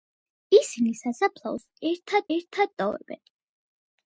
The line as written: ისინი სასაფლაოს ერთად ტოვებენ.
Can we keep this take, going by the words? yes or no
no